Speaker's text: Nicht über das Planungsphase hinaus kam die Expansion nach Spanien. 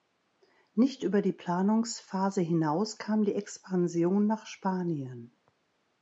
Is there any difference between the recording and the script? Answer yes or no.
yes